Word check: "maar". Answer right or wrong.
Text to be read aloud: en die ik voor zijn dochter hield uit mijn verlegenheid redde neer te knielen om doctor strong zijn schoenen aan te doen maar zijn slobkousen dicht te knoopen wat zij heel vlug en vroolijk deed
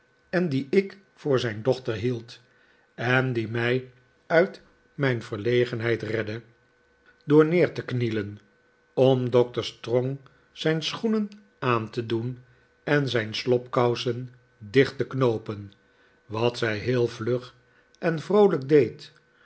wrong